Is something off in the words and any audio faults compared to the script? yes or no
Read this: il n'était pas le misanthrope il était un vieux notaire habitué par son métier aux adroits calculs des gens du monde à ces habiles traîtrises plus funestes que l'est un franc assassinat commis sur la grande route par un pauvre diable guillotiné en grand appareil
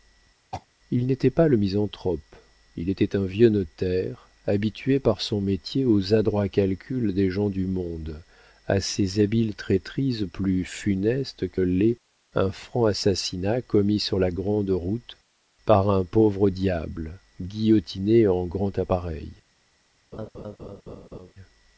yes